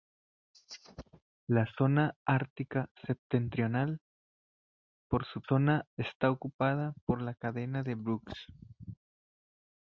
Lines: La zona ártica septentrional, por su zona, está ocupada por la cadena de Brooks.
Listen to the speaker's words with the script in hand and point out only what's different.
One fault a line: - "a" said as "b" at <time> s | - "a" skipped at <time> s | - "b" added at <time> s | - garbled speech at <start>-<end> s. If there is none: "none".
none